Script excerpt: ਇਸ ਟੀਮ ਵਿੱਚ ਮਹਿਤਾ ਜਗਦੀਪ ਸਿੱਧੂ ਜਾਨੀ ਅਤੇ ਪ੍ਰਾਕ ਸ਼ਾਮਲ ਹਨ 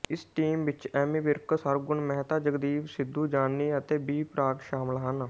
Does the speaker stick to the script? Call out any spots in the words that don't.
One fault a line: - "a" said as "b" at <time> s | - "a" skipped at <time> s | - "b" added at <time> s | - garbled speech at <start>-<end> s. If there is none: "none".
- "ਐਮੀ ਵਿਰਕ ਸਰਗੁਣ" added at 0.9 s
- "ਬੀ" added at 4.0 s